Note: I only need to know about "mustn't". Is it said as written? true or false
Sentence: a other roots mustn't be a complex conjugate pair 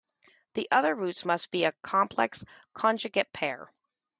false